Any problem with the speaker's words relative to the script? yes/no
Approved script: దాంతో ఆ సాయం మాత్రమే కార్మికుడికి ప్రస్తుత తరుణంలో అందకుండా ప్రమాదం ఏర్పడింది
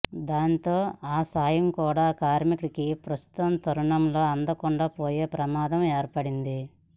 yes